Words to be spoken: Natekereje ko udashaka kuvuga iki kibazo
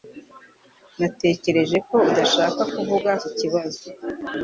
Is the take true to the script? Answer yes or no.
yes